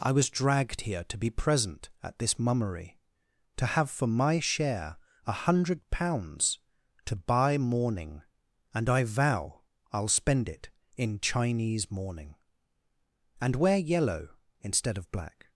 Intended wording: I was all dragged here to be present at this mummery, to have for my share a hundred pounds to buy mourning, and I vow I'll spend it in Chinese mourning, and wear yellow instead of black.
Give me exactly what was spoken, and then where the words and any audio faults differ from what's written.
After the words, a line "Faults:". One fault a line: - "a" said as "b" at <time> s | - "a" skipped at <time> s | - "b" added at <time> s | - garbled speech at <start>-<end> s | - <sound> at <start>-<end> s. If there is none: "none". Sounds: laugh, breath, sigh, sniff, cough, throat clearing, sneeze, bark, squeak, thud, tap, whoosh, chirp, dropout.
I was dragged here to be present at this mummery, to have for my share a hundred pounds to buy mourning, and I vow I'll spend it in Chinese mourning, and wear yellow instead of black.
Faults:
- "all" skipped at 0.3 s